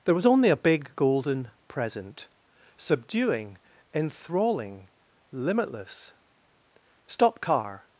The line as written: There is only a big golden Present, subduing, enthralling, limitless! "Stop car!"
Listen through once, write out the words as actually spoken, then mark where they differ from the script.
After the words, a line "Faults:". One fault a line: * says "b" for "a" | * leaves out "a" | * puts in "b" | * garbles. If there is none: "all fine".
There was only a big golden Present, subduing, enthralling, limitless! "Stop car!"
Faults:
* says "was" for "is"